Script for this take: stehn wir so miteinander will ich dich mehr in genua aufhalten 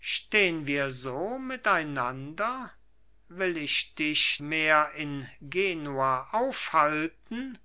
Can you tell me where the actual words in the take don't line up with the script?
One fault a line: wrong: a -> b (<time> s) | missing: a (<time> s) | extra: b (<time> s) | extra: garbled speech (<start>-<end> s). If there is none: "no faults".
no faults